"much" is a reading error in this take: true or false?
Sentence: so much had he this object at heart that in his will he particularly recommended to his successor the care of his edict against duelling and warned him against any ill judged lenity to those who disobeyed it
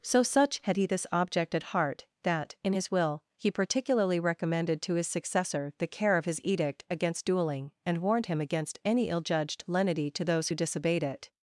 true